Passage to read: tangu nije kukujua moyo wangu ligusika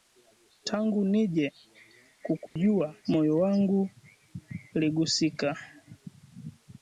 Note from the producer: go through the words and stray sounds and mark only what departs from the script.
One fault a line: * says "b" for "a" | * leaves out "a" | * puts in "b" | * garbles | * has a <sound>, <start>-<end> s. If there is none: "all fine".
* has a dropout, 2.5-2.6 s